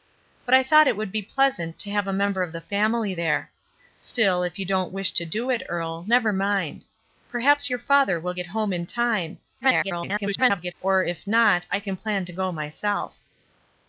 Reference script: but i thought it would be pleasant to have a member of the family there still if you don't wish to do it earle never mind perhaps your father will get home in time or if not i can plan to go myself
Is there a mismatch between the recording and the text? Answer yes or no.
yes